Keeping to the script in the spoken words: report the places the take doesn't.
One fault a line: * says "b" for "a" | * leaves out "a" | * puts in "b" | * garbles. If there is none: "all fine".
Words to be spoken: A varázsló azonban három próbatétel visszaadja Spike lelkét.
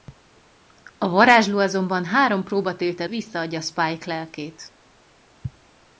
all fine